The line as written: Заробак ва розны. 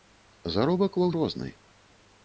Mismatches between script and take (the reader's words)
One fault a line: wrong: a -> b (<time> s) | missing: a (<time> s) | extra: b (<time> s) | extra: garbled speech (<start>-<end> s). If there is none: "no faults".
no faults